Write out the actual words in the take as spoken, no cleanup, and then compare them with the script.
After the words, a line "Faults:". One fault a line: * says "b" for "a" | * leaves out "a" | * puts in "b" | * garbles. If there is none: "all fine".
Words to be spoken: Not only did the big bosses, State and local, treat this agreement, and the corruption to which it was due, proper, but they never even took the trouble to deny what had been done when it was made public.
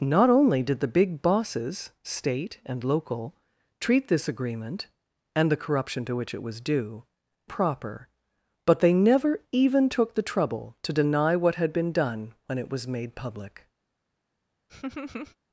Not only did the big bosses, State and local, treat this agreement, and the corruption to which it was due, proper, but they never even took the trouble to deny what had been done when it was made public.
Faults:
all fine